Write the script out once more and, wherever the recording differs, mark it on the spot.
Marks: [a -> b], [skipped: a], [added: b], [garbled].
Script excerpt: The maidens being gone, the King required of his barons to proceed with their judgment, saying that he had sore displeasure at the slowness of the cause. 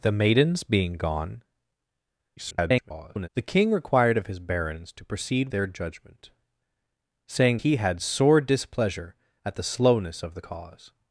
The maidens being gone, [garbled] the King required of his barons to proceed [skipped: with] their judgment, saying [skipped: that] he had sore displeasure at the slowness of the cause.